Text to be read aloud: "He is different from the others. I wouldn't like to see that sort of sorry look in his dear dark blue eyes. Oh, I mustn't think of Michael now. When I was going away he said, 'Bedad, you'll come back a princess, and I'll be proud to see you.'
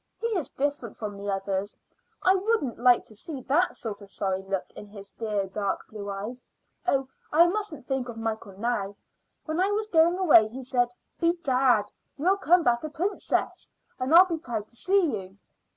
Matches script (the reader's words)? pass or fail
pass